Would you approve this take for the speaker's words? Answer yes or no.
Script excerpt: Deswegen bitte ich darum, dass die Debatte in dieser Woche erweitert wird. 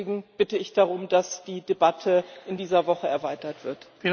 yes